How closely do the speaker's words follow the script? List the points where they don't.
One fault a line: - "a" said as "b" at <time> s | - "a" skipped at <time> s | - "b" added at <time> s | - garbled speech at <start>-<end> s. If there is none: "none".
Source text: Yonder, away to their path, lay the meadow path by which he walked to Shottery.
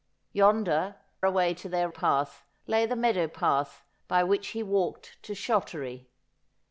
none